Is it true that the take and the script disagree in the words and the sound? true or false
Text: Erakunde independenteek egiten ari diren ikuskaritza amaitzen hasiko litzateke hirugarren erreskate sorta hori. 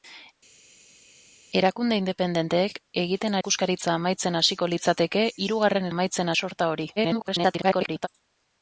true